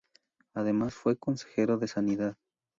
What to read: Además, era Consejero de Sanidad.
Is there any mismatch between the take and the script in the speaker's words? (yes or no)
yes